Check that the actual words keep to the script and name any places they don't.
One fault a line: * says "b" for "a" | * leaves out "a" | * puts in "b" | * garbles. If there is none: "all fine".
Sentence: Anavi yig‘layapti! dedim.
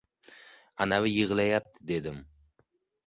all fine